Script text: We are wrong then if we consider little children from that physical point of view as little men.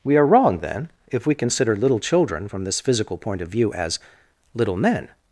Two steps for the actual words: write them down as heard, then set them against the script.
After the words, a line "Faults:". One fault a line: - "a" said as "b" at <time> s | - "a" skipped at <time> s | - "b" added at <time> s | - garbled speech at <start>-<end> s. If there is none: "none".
We are wrong then if we consider little children from this physical point of view as little men.
Faults:
- "that" said as "this" at 2.6 s